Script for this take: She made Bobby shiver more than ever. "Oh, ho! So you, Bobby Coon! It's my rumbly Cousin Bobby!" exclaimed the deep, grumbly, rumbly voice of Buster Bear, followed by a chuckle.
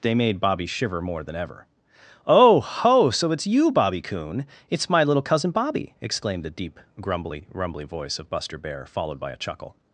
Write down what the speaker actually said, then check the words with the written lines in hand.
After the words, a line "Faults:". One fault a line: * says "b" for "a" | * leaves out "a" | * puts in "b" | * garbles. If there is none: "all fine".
They made Bobby shiver more than ever. "Oh, ho! So it's you, Bobby Coon! It's my little Cousin Bobby!" exclaimed the deep, grumbly, rumbly voice of Buster Bear, followed by a chuckle.
Faults:
* says "They" for "She"
* puts in "it's"
* says "little" for "rumbly"